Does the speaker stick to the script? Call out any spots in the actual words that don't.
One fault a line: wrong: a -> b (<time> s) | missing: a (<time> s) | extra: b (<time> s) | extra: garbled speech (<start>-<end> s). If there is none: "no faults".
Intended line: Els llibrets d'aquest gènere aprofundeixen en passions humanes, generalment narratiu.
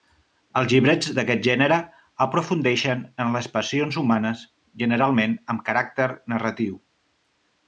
extra: les (3.4 s)
extra: amb caràcter (5.6 s)